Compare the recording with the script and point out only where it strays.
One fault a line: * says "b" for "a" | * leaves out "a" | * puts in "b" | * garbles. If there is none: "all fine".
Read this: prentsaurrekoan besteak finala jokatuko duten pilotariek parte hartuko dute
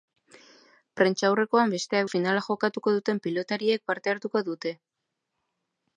all fine